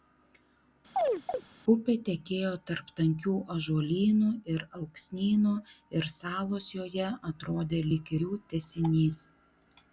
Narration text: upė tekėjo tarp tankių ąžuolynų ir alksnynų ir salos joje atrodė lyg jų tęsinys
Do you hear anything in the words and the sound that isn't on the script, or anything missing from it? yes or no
yes